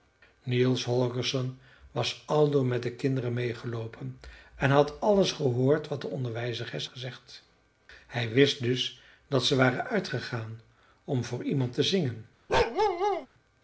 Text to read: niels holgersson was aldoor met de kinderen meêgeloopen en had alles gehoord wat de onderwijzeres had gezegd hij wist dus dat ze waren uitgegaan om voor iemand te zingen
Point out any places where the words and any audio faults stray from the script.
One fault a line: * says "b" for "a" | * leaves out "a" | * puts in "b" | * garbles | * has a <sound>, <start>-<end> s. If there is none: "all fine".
* leaves out "had"
* has a bark, 12.5-13.3 s